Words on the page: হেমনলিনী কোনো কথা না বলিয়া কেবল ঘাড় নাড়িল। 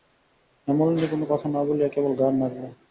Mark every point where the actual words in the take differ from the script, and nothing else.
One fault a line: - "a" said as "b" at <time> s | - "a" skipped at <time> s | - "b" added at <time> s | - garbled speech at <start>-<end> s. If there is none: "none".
none